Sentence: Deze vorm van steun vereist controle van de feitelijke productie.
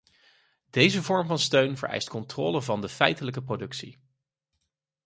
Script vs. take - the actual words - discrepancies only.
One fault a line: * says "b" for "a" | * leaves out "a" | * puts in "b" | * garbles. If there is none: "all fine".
all fine